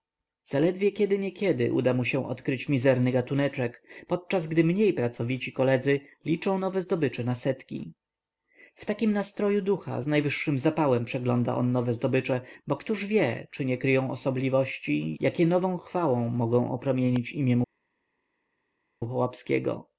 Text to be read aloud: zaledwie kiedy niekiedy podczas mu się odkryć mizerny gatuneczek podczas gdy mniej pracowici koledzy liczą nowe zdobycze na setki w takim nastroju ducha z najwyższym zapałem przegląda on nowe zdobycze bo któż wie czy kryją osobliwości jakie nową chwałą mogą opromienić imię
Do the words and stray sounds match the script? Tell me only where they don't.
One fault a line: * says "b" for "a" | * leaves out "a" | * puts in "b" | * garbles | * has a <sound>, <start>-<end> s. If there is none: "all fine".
* says "uda" for "podczas"
* puts in "nie"